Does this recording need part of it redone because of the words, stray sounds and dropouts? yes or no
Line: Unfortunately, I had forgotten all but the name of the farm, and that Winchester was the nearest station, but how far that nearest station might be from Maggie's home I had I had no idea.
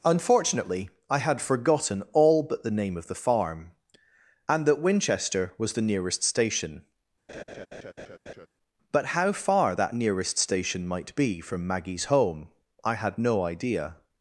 yes